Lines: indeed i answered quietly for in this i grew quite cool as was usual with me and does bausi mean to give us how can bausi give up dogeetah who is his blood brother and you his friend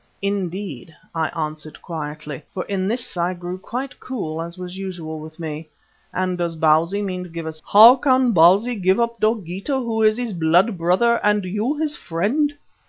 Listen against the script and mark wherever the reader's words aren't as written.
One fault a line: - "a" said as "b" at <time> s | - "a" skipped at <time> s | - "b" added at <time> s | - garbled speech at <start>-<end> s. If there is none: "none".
none